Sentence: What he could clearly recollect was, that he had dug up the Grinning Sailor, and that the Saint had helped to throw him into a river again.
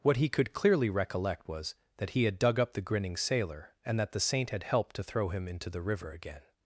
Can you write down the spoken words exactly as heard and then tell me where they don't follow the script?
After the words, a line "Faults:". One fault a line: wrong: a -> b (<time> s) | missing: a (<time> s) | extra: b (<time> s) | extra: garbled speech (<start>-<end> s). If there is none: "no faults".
What he could clearly recollect was, that he had dug up the Grinning Sailor, and that the Saint had helped to throw him into the river again.
Faults:
wrong: a -> the (5.7 s)